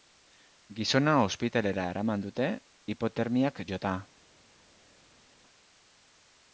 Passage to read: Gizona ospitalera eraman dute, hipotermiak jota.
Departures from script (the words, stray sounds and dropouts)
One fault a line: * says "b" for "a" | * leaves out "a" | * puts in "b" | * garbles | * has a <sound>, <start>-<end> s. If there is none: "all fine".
all fine